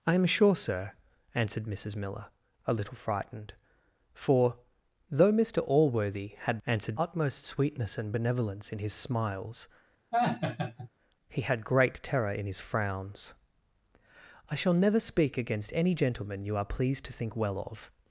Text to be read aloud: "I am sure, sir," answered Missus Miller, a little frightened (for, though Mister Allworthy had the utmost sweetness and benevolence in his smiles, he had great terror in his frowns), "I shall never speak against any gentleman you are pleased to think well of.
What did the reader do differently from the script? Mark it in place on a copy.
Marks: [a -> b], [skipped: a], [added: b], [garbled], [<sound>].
"I am sure, sir," answered Missus Miller, a little frightened (for, though Mister Allworthy had [the -> answered] utmost sweetness and benevolence in his smiles, [laugh] he had great terror in his frowns), "I shall never speak against any gentleman you are pleased to think well of.